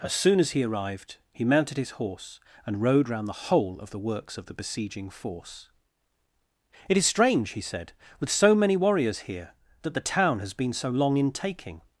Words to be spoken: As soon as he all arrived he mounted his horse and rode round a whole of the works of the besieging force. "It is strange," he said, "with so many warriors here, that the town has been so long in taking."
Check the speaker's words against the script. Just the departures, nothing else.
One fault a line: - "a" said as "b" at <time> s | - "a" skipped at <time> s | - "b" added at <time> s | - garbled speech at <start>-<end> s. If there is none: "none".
- "all" skipped at 0.6 s
- "a" said as "the" at 3.3 s